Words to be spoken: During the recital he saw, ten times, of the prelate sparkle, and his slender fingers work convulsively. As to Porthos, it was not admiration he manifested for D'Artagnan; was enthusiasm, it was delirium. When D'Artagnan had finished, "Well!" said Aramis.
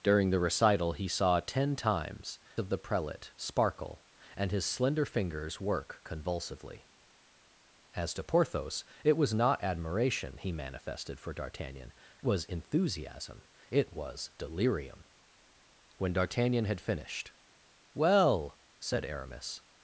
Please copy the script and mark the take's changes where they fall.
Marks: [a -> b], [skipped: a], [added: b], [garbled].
During the recital he saw, ten times, of the prelate sparkle, and his slender fingers work convulsively. As to Porthos, it was not admiration he manifested for D'Artagnan; was enthusiasm, it was delirium. When D'Artagnan had finished, "Well!" said Aramis.